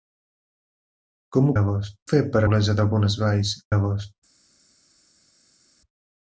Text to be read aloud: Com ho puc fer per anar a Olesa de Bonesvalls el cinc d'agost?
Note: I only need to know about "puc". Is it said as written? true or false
false